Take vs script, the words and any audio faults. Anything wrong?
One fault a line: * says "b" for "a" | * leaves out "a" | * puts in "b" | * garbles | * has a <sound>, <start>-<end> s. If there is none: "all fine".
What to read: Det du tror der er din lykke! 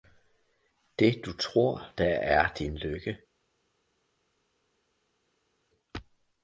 all fine